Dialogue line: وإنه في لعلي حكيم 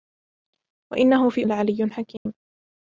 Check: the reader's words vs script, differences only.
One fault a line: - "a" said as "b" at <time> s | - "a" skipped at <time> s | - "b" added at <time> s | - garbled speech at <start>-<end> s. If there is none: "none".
none